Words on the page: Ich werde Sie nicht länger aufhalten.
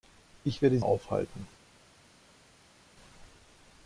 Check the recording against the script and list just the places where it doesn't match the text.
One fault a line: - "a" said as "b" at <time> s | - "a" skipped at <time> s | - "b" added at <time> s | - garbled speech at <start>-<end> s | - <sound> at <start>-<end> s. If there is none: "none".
- "Sie nicht länger" skipped at 0.8 s